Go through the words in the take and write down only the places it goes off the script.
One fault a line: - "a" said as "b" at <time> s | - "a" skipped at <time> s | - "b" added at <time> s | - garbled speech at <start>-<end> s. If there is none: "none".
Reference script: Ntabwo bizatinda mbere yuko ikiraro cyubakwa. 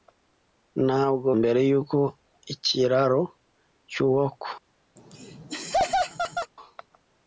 - "bizatinda" skipped at 1.3 s